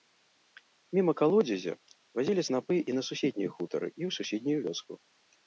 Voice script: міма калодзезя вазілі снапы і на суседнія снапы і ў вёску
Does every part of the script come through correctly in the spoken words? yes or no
no